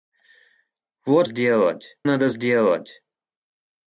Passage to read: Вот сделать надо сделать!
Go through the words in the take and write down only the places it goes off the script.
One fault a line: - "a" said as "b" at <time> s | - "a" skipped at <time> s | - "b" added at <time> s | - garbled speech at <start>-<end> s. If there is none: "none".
none